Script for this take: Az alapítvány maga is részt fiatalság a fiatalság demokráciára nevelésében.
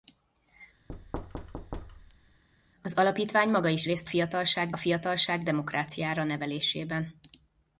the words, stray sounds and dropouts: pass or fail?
fail